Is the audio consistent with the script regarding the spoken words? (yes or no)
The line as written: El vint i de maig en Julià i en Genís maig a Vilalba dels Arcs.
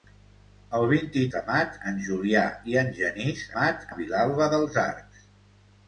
yes